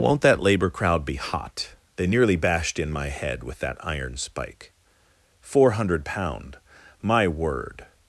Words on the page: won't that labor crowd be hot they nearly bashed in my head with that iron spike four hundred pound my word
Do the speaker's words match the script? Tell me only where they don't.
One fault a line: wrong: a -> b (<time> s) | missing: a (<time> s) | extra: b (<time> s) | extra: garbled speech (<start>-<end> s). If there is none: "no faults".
no faults